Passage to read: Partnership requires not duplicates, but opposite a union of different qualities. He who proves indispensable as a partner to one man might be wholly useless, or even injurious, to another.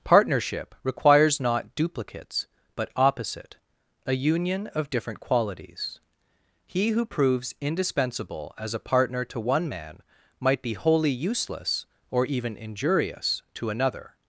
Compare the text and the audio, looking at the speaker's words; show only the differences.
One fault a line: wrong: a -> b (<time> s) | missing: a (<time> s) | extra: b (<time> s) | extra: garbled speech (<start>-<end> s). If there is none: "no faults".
no faults